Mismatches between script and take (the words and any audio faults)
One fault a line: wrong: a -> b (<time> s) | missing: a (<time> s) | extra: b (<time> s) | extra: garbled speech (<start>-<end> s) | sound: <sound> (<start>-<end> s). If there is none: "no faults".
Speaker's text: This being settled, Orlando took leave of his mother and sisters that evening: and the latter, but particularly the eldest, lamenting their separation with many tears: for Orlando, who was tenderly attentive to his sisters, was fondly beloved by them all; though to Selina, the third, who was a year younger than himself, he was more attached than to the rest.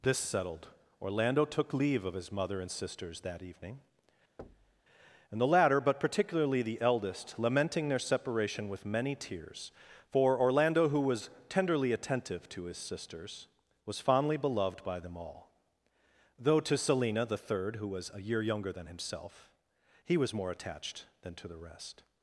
missing: being (0.2 s)
sound: thud (4.4-4.8 s)